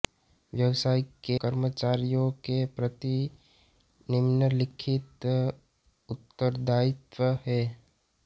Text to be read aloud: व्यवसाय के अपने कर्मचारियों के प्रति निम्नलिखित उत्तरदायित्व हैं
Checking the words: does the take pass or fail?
fail